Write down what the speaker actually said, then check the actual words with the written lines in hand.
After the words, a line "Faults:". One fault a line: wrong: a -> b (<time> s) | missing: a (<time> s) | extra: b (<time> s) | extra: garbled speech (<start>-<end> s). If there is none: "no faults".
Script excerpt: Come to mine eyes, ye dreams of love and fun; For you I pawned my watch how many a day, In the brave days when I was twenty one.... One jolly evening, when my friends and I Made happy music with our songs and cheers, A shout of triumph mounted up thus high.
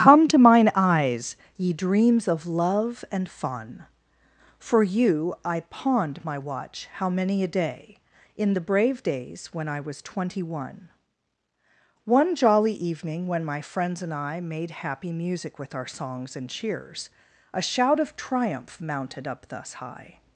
Come to mine eyes, ye dreams of love and fun; For you I pawned my watch how many a day, In the brave days when I was twenty one.... One jolly evening, when my friends and I Made happy music with our songs and cheers, A shout of triumph mounted up thus high.
Faults:
no faults